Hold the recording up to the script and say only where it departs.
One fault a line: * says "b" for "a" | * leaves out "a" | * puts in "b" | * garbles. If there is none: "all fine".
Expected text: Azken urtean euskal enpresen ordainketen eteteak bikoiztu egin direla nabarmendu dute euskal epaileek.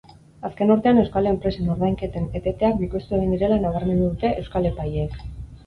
all fine